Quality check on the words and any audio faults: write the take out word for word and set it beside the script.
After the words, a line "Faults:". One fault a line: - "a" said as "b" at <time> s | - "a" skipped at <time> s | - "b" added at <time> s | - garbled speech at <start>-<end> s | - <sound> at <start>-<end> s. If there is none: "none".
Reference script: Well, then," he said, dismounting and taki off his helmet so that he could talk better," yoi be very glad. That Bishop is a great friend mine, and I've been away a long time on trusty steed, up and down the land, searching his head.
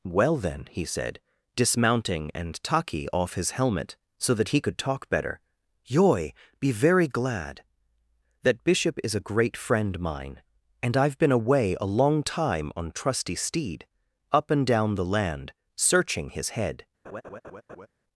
Well, then," he said, dismounting and taki off his helmet so that he could talk better," yoi be very glad. That Bishop is a great friend mine, and I've been away a long time on trusty steed, up and down the land, searching his head.
Faults:
- laugh at 17.0-17.9 s